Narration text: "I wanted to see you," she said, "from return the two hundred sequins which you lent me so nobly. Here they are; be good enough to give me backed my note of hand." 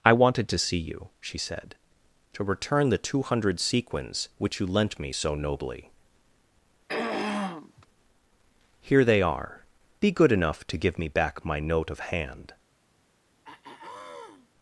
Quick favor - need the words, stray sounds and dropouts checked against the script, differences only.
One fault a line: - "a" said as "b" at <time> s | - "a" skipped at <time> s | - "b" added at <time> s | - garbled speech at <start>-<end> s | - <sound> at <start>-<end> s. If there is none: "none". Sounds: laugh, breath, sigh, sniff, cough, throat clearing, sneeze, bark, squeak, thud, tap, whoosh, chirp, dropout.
- "from" said as "to" at 2.3 s
- throat clearing at 6.9-7.9 s
- "backed" said as "back" at 11.1 s
- throat clearing at 13.4-14.5 s